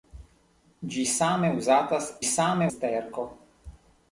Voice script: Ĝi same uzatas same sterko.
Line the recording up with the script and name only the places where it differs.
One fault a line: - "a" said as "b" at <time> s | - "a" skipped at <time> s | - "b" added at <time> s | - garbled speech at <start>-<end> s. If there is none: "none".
none